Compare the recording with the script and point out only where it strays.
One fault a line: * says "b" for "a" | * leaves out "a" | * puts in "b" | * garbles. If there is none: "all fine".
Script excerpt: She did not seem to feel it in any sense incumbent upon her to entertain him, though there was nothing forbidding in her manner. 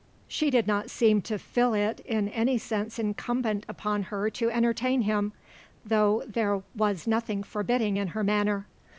all fine